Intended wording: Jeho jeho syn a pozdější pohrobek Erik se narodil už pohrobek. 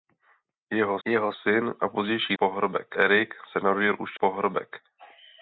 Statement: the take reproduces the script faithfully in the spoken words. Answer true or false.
true